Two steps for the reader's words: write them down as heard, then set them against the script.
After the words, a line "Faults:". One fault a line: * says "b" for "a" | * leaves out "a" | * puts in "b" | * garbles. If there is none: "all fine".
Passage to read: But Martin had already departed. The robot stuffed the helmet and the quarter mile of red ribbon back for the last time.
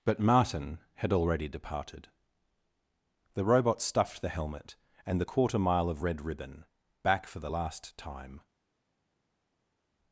But Martin had already departed. The robot stuffed the helmet and the quarter mile of red ribbon back for the last time.
Faults:
all fine